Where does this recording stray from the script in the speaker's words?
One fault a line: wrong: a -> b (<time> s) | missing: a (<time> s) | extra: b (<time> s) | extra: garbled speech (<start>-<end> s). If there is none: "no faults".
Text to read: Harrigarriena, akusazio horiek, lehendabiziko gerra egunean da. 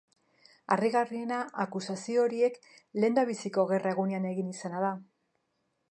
extra: egin izana (4.3 s)